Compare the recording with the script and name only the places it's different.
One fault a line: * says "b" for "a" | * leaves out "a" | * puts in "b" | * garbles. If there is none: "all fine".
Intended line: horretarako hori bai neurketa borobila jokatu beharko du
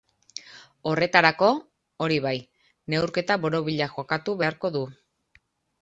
all fine